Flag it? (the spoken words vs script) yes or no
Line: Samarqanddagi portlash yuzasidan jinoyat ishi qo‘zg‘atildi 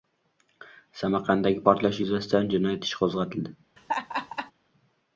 no